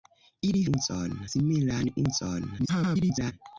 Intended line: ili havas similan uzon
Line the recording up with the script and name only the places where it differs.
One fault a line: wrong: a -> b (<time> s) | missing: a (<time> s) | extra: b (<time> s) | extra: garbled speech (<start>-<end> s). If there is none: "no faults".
wrong: havas -> uzon (0.7 s)
extra: garbled speech (2.6-3.3 s)